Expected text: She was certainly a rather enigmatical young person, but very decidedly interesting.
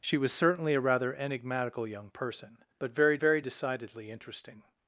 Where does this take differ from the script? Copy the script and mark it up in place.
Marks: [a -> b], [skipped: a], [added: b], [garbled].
She was certainly a rather enigmatical young person, but very [added: very] decidedly interesting.